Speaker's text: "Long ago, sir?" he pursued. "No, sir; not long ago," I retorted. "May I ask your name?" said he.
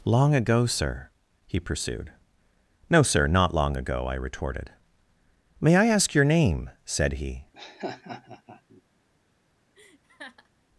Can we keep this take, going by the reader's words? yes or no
yes